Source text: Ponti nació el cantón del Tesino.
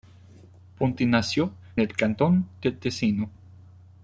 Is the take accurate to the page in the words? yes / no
yes